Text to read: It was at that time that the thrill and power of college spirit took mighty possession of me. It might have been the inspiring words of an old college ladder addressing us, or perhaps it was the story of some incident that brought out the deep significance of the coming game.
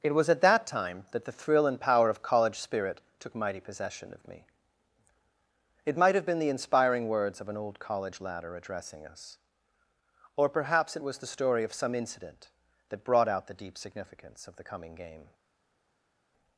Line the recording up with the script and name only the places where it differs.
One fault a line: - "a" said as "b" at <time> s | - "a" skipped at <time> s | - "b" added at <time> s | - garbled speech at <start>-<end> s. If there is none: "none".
none